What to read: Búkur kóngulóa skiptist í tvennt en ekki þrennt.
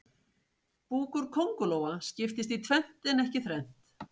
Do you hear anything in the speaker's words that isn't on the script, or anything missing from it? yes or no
no